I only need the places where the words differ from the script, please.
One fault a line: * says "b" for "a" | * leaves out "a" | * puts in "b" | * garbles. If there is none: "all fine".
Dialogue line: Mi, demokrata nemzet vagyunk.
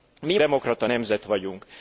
all fine